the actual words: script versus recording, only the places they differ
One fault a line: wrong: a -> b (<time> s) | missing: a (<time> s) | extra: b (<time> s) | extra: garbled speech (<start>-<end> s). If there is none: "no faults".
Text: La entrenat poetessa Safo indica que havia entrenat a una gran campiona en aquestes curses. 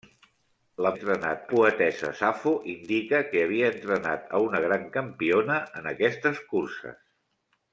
no faults